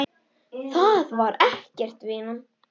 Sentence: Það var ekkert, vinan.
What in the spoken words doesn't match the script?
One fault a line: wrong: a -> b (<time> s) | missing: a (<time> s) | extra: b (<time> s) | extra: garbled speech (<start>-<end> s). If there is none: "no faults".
no faults